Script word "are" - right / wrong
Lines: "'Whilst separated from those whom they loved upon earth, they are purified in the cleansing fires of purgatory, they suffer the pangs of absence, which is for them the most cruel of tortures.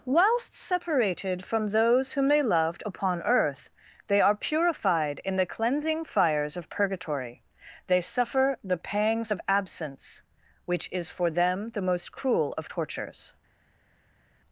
right